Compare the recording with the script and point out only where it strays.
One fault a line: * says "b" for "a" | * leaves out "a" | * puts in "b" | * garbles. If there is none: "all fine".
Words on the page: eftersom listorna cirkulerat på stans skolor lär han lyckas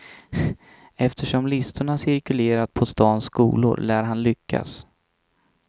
all fine